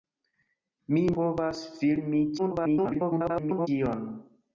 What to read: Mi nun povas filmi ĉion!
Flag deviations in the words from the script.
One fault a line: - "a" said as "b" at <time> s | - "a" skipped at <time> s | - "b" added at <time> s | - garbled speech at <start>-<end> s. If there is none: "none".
- "nun" skipped at 1.0 s
- garbled speech at 2.4-3.7 s